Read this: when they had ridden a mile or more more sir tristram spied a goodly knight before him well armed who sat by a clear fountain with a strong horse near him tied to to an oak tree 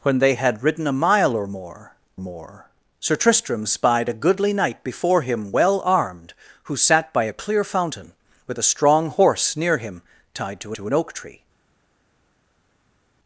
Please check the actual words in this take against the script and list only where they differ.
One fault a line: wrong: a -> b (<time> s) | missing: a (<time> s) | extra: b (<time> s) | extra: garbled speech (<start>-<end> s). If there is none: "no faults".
no faults